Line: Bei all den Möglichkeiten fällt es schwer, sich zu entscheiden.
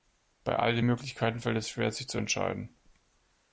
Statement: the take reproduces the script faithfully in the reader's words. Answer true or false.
true